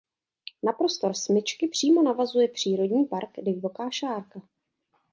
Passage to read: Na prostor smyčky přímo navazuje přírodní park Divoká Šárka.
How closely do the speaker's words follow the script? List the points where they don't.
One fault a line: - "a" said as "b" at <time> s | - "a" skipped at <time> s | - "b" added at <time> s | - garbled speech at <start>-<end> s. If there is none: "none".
none